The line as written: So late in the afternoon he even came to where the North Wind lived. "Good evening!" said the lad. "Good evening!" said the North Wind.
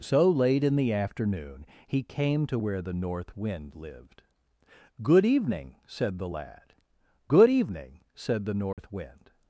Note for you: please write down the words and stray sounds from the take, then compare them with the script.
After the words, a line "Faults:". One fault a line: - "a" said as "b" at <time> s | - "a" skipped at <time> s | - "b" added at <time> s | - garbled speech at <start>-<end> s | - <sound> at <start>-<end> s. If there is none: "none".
So late in the afternoon he came to where the North Wind lived. "Good evening!" said the lad. "Good evening!" said the North Wind.
Faults:
- "even" skipped at 2.0 s
- dropout at 8.7-8.8 s